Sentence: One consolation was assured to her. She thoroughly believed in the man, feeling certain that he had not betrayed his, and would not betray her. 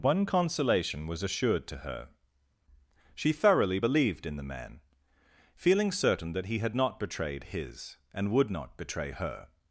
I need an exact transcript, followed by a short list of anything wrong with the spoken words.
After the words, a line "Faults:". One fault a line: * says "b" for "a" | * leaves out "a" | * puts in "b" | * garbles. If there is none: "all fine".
One consolation was assured to her. She thoroughly believed in the man, feeling certain that he had not betrayed his, and would not betray her.
Faults:
all fine